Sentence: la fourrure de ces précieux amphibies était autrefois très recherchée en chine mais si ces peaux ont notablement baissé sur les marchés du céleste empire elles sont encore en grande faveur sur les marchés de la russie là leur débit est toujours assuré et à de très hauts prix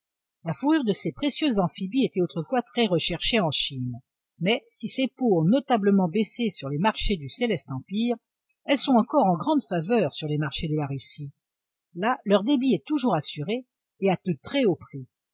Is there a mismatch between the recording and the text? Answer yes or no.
no